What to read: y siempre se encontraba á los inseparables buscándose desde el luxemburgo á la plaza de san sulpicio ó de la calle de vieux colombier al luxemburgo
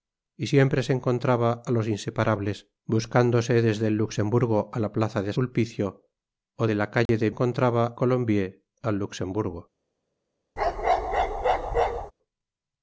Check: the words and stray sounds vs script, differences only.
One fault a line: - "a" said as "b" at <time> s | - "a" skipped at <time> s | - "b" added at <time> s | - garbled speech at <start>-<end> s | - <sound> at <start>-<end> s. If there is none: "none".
- "san" skipped at 5.3 s
- dropout at 7.1-7.1 s
- "vieux" said as "encontraba" at 7.3 s
- bark at 10.6-12.1 s